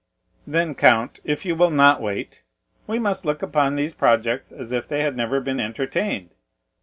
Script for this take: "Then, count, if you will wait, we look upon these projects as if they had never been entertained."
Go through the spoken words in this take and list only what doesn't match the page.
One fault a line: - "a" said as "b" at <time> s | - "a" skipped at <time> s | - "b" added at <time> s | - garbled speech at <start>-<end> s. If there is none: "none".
- "not" added at 1.7 s
- "must" added at 3.0 s